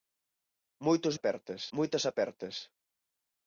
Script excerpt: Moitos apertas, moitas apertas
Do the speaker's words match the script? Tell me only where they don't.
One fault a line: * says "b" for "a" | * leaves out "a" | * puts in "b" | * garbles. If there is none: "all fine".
all fine